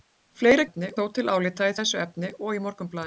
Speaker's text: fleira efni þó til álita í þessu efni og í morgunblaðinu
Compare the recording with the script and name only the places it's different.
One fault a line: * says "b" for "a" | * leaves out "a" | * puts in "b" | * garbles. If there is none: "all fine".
all fine